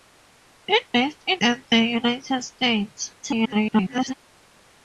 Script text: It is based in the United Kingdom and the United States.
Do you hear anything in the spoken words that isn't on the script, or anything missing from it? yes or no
yes